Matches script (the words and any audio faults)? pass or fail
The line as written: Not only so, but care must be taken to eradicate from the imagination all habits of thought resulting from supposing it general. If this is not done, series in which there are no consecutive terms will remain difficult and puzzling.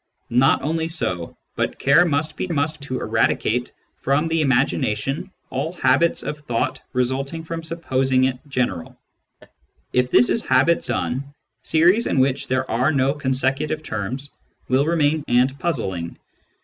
fail